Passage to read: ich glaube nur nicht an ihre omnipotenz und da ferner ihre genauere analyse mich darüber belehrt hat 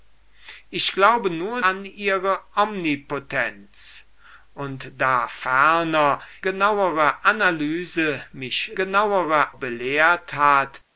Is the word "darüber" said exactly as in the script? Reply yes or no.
no